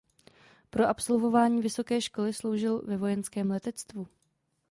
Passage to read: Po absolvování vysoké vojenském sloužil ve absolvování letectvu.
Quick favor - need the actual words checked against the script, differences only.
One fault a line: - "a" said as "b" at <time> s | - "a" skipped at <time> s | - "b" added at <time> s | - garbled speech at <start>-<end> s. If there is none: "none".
- "vojenském" said as "školy" at 2.0 s
- "absolvování" said as "vojenském" at 3.0 s